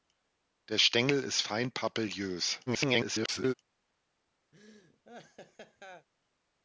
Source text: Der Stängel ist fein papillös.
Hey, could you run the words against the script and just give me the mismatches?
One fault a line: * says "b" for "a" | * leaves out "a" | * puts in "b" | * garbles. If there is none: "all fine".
* garbles